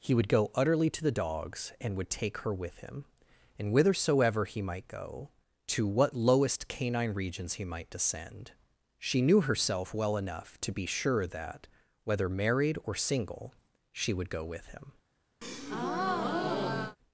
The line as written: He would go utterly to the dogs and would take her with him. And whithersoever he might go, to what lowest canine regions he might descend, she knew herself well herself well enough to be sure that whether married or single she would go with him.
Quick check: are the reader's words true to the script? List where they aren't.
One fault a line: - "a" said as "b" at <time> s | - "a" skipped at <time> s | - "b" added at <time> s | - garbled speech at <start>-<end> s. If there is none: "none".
- "herself well" skipped at 10.2 s